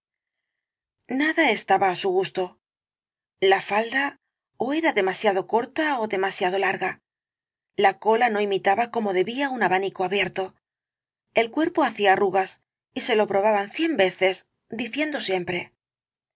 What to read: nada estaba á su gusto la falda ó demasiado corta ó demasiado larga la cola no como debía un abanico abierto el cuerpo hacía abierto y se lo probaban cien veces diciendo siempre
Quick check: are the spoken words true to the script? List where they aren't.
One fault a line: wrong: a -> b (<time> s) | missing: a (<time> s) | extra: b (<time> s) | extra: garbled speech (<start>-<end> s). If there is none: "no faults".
extra: era (4.8 s)
extra: imitaba (8.5 s)
wrong: abierto -> arrugas (12.1 s)